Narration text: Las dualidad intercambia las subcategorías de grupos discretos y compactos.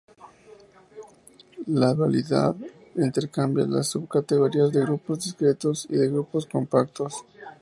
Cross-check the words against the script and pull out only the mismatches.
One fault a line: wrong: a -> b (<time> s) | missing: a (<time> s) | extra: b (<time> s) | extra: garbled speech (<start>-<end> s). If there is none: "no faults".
wrong: Las -> La (1.7 s)
extra: de grupos (6.0 s)